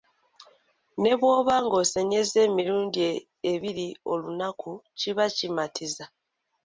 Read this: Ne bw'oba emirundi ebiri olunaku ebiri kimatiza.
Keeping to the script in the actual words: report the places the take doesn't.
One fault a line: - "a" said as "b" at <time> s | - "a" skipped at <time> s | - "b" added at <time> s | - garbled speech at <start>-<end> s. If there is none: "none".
- "ng'osenyezza" added at 1.6 s
- "ebiri" said as "kiba" at 5.0 s